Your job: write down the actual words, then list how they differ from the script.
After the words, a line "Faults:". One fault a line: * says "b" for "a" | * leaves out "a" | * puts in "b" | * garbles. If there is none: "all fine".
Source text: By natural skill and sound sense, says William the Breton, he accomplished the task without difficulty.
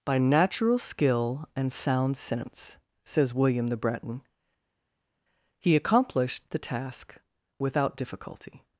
By natural skill and sound sense, says William the Breton, he accomplished the task without difficulty.
Faults:
all fine